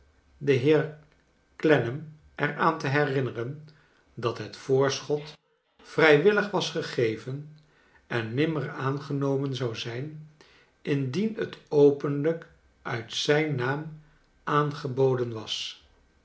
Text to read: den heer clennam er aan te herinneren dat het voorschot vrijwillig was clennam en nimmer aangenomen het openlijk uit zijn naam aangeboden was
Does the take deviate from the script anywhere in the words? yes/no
yes